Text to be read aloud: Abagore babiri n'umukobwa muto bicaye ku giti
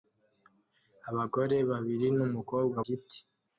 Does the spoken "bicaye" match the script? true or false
false